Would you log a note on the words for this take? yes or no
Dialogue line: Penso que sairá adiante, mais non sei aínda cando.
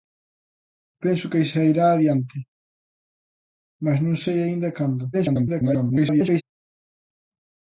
yes